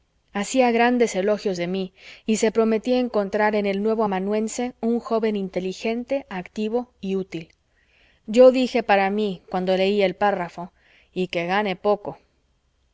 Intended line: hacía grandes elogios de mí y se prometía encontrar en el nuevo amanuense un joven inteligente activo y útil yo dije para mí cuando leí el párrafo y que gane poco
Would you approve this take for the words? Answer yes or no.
yes